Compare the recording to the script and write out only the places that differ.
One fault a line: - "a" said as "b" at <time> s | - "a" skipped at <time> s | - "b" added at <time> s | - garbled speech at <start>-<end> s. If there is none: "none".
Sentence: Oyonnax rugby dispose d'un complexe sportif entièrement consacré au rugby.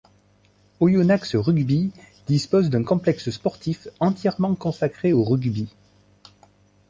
none